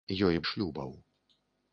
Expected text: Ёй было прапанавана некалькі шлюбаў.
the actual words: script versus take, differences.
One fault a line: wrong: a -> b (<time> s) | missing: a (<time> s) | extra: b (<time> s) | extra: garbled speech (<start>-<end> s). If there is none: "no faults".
missing: было прапанавана некалькі (0.4 s)